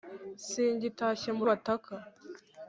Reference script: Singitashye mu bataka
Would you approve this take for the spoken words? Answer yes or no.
yes